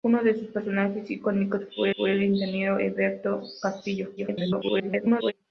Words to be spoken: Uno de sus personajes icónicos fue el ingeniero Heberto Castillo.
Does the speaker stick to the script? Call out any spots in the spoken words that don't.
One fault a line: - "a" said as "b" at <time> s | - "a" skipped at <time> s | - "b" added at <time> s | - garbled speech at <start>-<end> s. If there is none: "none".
- "fue" added at 2.0 s
- garbled speech at 4.2-5.3 s